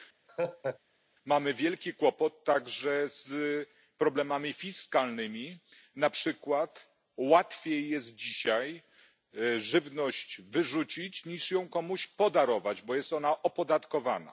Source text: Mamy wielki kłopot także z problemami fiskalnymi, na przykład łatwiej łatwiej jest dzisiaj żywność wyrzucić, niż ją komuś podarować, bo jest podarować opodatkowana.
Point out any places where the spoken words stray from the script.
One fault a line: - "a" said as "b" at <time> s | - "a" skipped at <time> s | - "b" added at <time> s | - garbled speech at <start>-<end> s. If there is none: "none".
- "łatwiej" skipped at 7.9 s
- "podarować" said as "ona" at 13.1 s